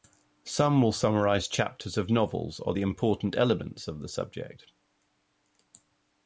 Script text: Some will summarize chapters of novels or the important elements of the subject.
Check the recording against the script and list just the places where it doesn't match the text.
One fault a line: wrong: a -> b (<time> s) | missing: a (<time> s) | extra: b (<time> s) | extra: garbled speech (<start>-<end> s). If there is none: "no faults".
no faults